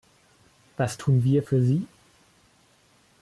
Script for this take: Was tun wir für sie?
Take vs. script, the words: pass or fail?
pass